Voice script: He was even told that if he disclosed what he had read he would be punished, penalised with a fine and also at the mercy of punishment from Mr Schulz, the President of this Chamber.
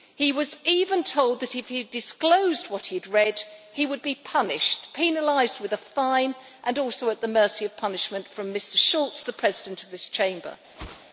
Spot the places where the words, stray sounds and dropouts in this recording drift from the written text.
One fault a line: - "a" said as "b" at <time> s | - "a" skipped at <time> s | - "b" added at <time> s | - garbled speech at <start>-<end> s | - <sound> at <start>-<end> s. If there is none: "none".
- whoosh at 10.7-11.1 s